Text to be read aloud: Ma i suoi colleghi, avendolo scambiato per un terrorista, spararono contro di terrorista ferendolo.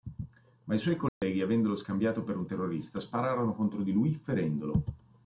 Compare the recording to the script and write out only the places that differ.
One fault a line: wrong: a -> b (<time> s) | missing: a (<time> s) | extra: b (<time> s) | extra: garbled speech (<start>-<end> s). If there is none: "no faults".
wrong: terrorista -> lui (3.9 s)